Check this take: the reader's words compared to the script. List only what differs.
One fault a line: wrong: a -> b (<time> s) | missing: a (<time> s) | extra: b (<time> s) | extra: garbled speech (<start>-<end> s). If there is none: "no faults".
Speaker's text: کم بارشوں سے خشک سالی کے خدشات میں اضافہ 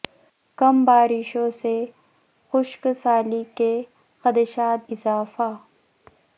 missing: میں (4.9 s)